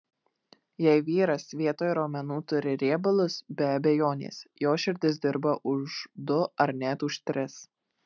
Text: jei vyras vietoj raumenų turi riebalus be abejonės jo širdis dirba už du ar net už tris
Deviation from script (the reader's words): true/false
false